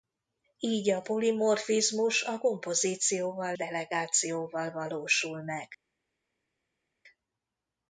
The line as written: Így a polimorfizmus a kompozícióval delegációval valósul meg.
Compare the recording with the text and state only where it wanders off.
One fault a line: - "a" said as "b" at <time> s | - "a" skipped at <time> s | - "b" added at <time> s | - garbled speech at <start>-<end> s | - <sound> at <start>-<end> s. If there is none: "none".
none